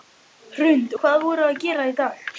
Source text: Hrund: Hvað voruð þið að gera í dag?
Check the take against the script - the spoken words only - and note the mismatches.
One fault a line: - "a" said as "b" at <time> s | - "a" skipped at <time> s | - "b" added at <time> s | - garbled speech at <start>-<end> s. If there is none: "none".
none